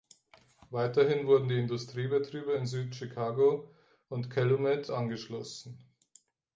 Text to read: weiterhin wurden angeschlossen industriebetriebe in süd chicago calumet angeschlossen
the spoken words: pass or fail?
fail